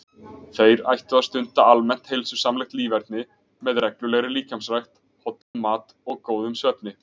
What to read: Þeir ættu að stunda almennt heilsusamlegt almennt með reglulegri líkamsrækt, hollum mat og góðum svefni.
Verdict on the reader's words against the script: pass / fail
fail